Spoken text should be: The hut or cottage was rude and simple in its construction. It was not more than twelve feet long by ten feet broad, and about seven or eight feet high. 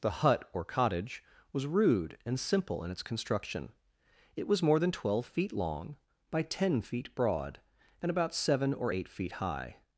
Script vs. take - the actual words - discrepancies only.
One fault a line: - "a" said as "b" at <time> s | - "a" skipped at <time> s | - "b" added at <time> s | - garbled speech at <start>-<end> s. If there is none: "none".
- "not" skipped at 4.6 s